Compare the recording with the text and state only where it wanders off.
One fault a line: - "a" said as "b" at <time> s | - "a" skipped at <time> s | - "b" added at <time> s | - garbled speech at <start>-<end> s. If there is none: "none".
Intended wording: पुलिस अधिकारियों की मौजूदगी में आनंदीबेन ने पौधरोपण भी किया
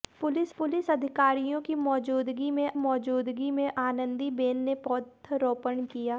- "पुलिस" added at 0.6 s
- "मौजूदगी में" added at 2.7 s
- "भी" skipped at 5.8 s